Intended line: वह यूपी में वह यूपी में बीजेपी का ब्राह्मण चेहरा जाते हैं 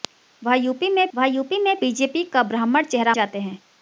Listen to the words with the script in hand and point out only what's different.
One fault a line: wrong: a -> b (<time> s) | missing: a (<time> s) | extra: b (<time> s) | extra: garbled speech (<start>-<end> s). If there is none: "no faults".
no faults